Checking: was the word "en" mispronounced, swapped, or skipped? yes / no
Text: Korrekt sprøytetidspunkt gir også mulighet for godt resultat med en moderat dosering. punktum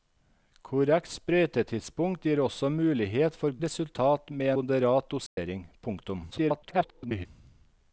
yes